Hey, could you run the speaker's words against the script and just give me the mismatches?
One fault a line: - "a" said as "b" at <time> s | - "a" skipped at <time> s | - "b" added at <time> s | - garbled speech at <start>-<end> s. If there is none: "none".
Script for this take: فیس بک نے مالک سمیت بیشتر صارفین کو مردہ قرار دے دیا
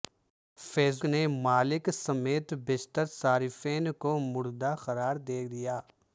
- "بک" skipped at 1.0 s